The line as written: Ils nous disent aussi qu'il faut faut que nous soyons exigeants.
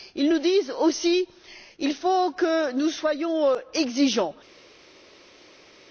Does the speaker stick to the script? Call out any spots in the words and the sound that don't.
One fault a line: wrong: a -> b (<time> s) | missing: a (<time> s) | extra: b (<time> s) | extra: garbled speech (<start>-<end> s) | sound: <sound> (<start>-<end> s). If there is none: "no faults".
missing: faut (2.3 s)